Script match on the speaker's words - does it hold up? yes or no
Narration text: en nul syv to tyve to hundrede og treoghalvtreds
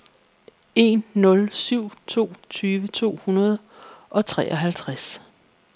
yes